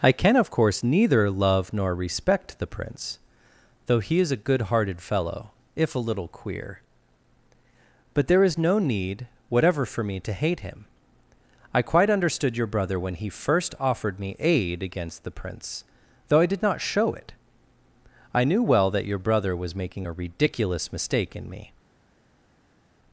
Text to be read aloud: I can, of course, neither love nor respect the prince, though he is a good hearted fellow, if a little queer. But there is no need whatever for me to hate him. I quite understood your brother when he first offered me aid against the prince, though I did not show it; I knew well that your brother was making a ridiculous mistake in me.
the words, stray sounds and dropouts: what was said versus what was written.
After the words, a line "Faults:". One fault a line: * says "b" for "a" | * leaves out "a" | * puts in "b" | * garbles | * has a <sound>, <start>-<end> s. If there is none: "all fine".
I can, of course, neither love nor respect the prince, though he is a good hearted fellow, if a little queer. But there is no need whatever for me to hate him. I quite understood your brother when he first offered me aid against the prince, though I did not show it; I knew well that your brother was making a ridiculous mistake in me.
Faults:
all fine